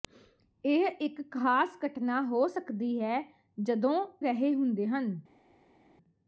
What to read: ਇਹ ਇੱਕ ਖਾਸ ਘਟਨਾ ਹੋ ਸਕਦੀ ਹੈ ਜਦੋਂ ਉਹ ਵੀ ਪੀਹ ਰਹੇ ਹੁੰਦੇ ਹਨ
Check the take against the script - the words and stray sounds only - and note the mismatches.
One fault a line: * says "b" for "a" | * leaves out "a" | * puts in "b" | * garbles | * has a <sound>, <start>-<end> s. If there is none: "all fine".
* leaves out "ਉਹ ਵੀ ਪੀਹ"